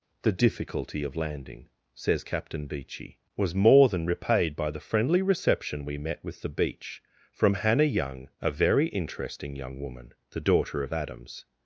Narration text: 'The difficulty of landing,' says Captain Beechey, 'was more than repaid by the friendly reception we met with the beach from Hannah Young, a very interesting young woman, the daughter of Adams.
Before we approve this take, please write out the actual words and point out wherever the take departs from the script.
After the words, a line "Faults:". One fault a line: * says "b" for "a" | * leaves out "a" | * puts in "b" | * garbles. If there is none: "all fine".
'The difficulty of landing,' says Captain Beechey, 'was more than repaid by the friendly reception we met with the beach from Hannah Young, a very interesting young woman, the daughter of Adams.
Faults:
all fine